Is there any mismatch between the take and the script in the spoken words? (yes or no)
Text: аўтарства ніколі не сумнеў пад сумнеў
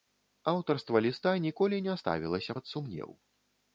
yes